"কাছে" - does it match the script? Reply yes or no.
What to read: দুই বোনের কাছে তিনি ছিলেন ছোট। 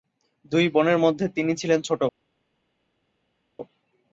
no